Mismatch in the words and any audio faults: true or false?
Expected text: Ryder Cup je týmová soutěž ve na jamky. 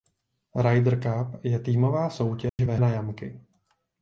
true